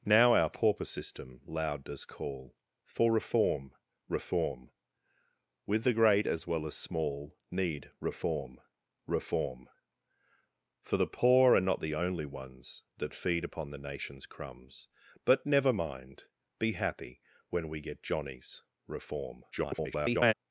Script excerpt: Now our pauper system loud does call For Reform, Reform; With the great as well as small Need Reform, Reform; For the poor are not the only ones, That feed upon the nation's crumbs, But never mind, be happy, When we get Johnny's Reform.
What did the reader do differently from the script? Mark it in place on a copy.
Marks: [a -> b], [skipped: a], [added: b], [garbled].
Now our pauper system loud does call For Reform, Reform; With the great as well as small Need Reform, Reform; For the poor are not the only ones, That feed upon the nation's crumbs, But never mind, be happy, When we get Johnny's Reform. [garbled]